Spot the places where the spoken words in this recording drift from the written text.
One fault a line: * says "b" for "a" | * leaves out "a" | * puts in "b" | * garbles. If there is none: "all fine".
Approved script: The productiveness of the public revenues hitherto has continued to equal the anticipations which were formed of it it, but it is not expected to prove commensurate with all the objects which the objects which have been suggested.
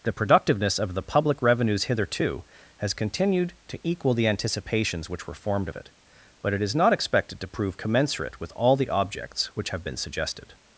* leaves out "it"
* leaves out "the objects which"